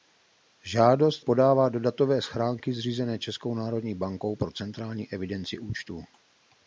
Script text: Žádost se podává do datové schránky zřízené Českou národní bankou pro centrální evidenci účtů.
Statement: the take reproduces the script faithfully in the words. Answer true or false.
false